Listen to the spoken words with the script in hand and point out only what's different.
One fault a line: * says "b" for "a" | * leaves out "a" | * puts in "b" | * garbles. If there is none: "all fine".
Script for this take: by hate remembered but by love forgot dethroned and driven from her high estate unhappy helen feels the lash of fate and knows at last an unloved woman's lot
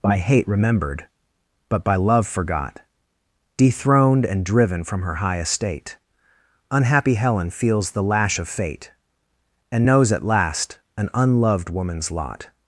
all fine